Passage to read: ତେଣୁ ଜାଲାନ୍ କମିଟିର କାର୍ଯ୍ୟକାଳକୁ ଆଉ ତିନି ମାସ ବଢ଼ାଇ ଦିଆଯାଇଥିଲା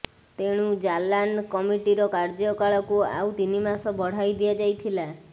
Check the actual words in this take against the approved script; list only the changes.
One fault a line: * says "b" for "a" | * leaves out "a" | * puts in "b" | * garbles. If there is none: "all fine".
all fine